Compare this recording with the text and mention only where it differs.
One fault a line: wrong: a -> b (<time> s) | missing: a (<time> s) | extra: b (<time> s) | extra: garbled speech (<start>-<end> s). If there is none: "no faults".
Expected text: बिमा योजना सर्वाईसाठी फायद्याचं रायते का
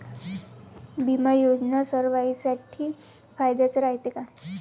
no faults